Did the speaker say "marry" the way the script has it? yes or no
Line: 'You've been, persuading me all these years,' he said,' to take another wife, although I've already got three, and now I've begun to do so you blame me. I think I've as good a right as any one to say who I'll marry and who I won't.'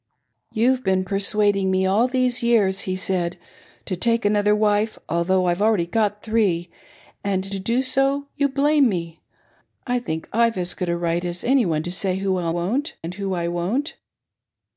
no